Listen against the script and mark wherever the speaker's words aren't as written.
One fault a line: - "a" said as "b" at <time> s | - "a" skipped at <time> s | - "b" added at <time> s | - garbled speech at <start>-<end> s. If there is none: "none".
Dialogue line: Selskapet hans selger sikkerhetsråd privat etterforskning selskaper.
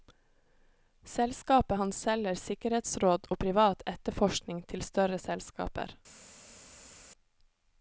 - "og" added at 3.3 s
- "til større" added at 4.7 s